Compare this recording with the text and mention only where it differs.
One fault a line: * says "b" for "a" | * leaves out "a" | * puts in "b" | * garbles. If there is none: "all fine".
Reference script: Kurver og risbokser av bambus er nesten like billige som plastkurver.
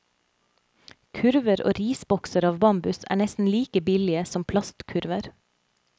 all fine